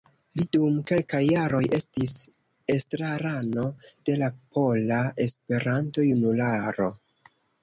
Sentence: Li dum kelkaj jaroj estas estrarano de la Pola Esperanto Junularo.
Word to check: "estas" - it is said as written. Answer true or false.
false